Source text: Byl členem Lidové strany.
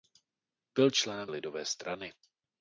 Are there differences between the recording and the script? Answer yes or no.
no